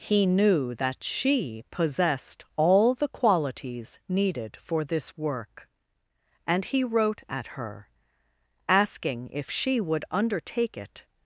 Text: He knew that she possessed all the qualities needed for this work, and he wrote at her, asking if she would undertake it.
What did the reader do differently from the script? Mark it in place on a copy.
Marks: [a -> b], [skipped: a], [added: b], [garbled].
He knew that she possessed all the qualities needed for this work, and he wrote at her, asking if she would undertake it.